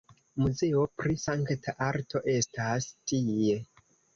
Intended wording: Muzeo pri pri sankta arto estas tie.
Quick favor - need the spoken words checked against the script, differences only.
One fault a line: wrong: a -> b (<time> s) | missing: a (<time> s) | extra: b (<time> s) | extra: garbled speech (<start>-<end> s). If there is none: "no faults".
missing: pri (1.2 s)